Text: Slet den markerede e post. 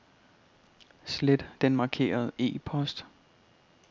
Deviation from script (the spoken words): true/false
false